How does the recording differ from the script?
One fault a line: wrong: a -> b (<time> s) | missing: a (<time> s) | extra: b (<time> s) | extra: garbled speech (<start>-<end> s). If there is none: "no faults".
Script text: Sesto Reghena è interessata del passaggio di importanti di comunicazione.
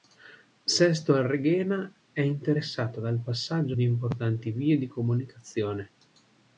extra: al (1.1 s)
wrong: del -> dal (3.0 s)
extra: vie (4.5 s)